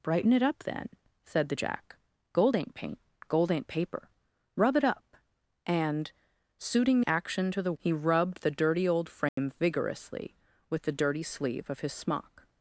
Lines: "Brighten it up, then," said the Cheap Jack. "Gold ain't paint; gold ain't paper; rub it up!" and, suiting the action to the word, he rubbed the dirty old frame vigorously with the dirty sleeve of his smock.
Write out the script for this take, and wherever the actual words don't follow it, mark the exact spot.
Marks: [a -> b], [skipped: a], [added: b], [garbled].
"Brighten it up, then," said the [skipped: Cheap] Jack. "Gold ain't paint; gold ain't paper; rub it up!" and, suiting [skipped: the] action to the [skipped: word,] he rubbed the dirty old frame vigorously with the dirty sleeve of his smock.